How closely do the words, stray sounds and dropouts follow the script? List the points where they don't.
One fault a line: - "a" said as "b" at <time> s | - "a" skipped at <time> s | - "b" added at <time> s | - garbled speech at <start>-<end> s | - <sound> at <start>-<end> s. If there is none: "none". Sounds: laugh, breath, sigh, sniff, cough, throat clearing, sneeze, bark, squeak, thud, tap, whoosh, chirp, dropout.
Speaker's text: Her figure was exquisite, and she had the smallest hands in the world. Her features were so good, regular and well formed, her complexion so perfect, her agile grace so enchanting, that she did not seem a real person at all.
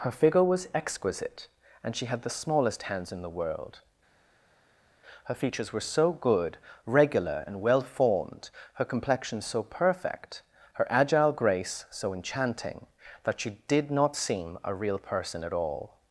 none